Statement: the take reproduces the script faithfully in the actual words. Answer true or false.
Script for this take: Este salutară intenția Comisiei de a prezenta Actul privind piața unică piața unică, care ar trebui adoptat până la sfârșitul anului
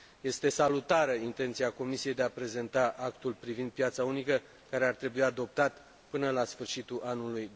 false